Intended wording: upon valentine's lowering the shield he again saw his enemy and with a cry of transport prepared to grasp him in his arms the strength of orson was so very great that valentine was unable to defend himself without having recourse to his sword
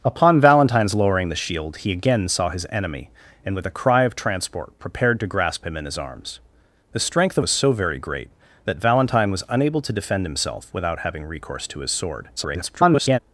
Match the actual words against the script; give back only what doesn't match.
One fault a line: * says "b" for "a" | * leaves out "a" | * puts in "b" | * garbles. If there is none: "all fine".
* leaves out "orson"
* garbles